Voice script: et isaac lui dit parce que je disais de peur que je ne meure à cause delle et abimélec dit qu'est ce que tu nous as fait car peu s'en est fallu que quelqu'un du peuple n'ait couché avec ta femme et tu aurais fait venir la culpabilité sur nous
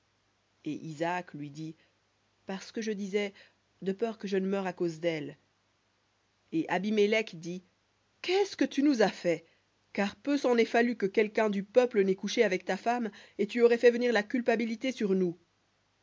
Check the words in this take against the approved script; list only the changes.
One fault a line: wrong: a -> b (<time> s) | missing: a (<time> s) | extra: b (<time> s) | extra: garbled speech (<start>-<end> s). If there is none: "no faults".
no faults